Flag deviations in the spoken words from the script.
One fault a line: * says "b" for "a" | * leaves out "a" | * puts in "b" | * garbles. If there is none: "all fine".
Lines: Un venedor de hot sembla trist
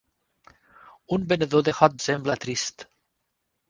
all fine